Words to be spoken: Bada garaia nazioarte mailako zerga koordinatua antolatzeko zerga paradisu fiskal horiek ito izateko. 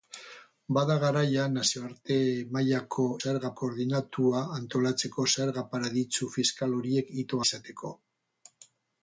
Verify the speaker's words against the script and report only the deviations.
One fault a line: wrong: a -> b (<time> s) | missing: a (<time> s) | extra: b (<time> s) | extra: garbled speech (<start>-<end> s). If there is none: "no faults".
no faults